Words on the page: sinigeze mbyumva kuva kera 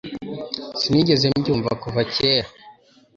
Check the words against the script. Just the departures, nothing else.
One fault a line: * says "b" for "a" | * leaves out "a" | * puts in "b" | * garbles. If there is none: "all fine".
all fine